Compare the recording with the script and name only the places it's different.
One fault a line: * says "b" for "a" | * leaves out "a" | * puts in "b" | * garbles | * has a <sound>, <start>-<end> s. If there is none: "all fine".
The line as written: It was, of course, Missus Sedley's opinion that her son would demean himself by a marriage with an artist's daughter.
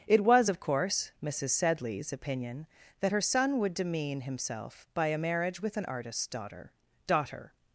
* puts in "daughter"